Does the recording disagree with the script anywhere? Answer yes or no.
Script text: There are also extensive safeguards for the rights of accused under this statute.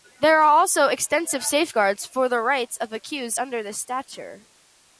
no